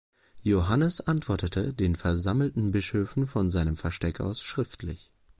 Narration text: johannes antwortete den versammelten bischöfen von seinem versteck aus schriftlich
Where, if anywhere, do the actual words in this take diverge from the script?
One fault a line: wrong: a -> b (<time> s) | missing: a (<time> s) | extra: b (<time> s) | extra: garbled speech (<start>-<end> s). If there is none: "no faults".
no faults